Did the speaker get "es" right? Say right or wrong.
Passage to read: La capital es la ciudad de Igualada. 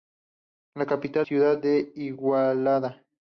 wrong